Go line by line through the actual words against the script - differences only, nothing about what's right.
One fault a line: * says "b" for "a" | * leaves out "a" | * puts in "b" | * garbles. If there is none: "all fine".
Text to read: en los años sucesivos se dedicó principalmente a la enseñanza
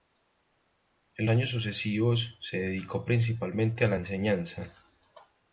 * leaves out "los"